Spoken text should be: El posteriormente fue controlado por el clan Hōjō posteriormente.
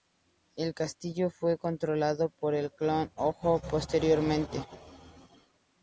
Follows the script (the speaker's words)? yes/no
no